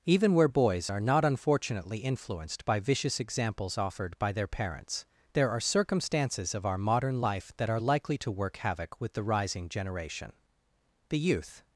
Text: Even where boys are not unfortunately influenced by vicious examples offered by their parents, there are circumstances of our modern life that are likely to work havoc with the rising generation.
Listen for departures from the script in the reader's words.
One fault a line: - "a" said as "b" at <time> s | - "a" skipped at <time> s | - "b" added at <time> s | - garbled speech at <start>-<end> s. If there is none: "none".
- "The youth" added at 11.1 s